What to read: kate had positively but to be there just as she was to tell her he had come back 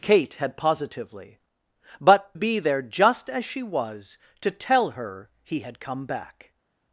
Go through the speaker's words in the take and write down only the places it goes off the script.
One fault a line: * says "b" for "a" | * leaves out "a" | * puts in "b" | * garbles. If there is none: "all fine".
* leaves out "to"